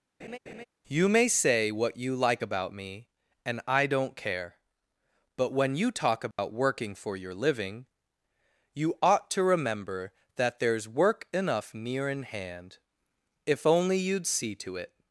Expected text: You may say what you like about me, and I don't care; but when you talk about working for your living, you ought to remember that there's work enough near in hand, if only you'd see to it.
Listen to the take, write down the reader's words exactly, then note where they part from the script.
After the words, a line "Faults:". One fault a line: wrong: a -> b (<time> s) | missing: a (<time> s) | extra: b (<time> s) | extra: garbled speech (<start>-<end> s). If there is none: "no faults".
You may say what you like about me, and I don't care; but when you talk about working for your living, you ought to remember that there's work enough near in hand, if only you'd see to it.
Faults:
no faults